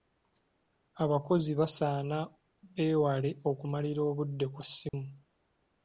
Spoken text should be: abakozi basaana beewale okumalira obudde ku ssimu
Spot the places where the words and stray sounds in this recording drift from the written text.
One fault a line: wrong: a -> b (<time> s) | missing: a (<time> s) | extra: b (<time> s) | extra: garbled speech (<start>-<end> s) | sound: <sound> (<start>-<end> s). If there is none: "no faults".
sound: dropout (4.9-4.9 s)